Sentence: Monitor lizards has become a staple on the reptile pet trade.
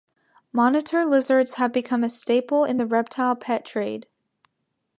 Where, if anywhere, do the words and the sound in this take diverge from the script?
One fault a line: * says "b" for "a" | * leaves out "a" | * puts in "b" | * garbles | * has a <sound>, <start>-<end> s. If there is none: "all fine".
* says "have" for "has"
* says "in" for "on"